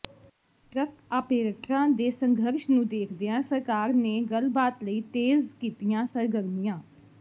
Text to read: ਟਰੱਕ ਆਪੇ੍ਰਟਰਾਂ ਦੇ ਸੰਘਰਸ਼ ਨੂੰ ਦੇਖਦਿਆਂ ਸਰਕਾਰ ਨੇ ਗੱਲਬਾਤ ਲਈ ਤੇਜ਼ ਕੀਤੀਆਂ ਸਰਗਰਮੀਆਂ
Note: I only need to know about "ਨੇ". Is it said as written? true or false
true